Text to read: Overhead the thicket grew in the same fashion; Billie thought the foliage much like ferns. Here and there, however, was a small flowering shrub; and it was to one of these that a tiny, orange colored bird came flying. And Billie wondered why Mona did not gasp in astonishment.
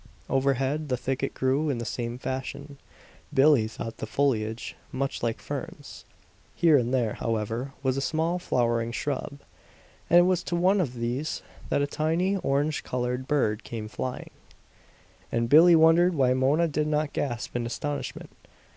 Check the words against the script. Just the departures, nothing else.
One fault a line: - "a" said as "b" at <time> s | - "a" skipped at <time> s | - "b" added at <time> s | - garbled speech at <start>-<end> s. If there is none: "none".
none